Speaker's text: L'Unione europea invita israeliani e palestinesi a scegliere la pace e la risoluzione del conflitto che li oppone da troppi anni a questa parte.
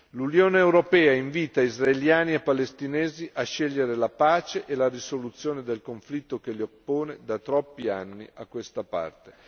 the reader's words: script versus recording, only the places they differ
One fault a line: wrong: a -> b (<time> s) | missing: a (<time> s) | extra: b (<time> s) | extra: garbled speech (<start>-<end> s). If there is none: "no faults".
no faults